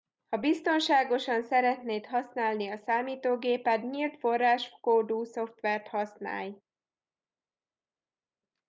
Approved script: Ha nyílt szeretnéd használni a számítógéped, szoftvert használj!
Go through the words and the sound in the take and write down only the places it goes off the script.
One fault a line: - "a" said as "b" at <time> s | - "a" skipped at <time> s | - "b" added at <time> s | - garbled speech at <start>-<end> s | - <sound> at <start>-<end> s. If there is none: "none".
- "nyílt" said as "biztonságosan" at 0.4 s
- "nyílt forráskódú" added at 3.9 s